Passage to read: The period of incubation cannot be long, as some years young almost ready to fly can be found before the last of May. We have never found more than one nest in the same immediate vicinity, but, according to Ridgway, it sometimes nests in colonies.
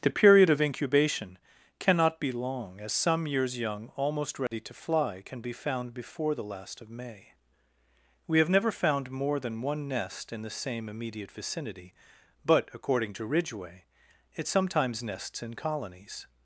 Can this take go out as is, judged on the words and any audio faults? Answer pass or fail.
fail